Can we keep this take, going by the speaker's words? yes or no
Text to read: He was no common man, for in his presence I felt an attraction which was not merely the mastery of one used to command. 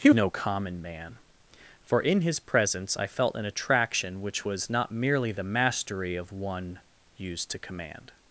no